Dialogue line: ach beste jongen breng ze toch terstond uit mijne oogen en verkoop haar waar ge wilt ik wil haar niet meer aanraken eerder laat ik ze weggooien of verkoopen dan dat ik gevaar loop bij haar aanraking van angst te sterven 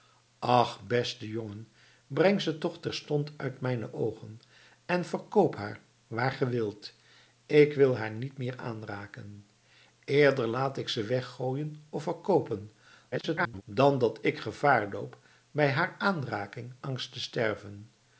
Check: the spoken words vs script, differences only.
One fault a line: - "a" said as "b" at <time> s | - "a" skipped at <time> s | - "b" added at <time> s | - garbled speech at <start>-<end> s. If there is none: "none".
- garbled speech at 13.1-13.6 s
- "van" skipped at 16.7 s